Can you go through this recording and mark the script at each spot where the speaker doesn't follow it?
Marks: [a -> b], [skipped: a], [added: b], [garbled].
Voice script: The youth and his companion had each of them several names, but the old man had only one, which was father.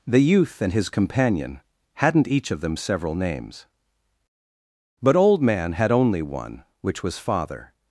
The youth and his companion [had -> hadn't] each of them several names, but [skipped: the] old man had only one, which was father.